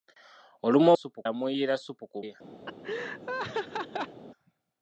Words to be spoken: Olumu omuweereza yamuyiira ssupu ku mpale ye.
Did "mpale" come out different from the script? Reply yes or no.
yes